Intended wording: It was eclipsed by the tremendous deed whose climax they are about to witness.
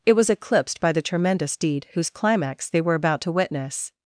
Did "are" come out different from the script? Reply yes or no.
yes